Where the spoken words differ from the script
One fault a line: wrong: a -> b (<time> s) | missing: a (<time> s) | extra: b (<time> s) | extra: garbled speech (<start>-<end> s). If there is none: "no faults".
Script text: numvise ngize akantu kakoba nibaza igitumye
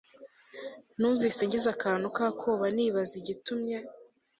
no faults